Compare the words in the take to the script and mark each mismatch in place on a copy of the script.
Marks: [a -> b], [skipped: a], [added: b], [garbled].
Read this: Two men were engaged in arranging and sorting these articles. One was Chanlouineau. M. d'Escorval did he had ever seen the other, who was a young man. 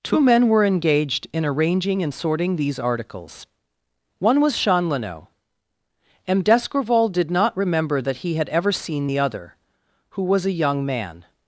Two men were engaged in arranging and sorting these articles. One was Chanlouineau. M. d'Escorval did [added: not remember that] he had ever seen the other, who was a young man.